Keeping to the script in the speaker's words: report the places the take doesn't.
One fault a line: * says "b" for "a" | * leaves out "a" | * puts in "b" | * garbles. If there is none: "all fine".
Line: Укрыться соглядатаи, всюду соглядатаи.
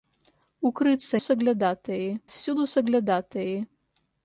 all fine